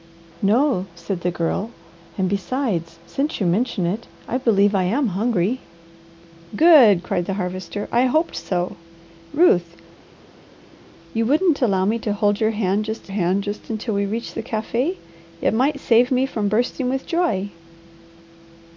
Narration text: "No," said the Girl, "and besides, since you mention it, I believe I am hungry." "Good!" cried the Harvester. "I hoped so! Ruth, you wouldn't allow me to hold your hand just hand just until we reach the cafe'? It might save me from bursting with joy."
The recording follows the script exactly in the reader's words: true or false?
true